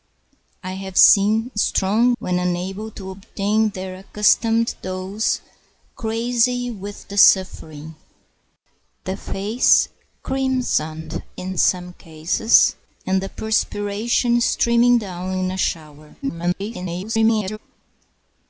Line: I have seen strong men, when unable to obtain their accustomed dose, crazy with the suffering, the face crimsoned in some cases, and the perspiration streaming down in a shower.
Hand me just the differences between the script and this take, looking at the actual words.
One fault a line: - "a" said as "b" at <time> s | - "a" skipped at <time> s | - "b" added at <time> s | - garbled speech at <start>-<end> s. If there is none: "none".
- "men" skipped at 2.2 s
- garbled speech at 16.2-17.6 s